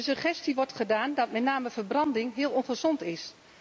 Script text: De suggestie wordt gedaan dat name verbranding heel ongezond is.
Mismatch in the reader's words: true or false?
true